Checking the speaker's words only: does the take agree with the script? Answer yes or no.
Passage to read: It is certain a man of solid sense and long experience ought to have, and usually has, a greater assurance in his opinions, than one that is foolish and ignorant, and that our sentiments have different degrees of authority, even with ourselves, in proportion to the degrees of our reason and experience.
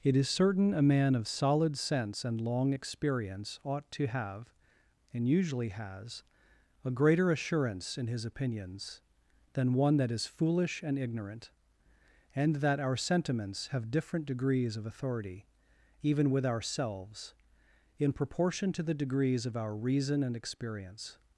yes